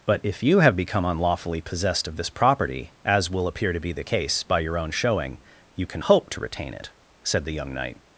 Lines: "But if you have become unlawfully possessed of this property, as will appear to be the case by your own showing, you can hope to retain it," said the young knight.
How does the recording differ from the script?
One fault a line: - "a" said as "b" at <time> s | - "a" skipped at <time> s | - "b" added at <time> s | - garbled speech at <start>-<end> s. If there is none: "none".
none